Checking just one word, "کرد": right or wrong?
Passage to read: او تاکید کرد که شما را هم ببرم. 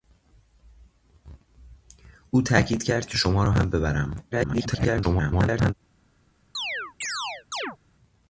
right